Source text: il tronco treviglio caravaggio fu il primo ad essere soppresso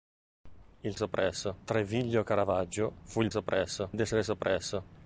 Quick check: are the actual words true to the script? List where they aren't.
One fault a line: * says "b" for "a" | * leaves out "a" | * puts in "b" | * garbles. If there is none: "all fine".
* says "soppresso" for "tronco"
* says "soppresso" for "primo"